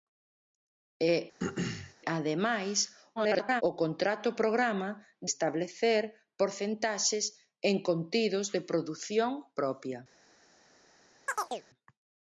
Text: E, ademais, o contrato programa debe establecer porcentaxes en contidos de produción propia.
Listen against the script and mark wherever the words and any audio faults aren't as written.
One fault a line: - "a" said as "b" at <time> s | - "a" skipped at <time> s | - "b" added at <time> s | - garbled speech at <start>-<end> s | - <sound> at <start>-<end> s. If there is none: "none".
- throat clearing at 1.4-1.9 s
- garbled speech at 3.2-3.6 s
- "debe" skipped at 4.9 s
- chirp at 11.3-11.6 s